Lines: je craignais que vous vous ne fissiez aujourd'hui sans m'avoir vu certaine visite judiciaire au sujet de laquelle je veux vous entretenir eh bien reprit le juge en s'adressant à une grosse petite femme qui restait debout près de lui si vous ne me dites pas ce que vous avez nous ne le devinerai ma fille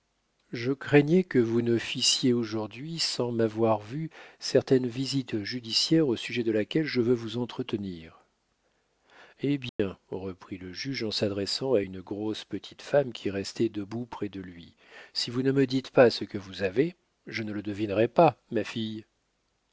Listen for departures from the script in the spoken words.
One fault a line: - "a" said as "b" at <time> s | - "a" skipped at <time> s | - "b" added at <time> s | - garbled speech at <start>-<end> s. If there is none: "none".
- "vous" skipped at 1.6 s
- "nous" said as "je" at 17.3 s
- "pas" added at 18.1 s